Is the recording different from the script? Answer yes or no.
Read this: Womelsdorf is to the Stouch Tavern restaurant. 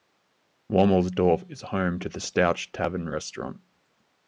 yes